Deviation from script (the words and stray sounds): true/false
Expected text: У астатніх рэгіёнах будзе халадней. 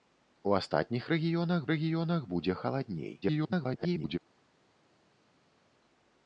true